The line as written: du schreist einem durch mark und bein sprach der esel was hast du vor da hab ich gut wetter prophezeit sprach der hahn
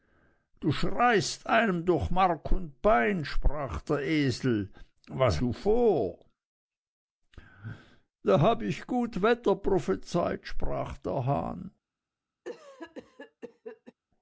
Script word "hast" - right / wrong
wrong